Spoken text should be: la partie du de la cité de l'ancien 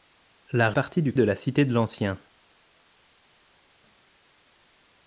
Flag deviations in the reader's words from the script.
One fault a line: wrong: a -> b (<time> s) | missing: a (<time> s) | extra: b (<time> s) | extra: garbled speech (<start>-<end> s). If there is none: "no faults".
no faults